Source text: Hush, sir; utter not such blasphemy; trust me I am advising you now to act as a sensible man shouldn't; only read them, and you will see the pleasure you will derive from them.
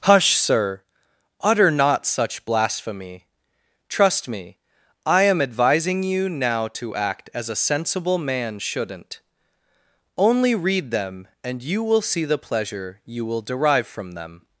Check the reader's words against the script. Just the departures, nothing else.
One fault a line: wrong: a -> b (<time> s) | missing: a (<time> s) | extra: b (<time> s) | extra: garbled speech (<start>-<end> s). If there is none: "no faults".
no faults